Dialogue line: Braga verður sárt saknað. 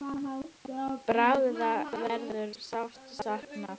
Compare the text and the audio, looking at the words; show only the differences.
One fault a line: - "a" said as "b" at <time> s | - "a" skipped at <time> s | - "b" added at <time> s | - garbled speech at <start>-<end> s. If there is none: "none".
none